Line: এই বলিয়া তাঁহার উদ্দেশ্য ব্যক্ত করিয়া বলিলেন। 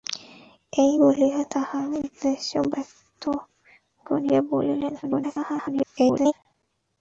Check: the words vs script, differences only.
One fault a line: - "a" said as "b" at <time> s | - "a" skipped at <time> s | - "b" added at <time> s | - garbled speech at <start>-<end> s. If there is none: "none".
- garbled speech at 5.0-6.3 s